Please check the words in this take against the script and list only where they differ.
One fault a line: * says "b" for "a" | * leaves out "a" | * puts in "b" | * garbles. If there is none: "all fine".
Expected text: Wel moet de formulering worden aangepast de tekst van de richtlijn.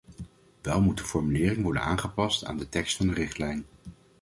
* puts in "aan"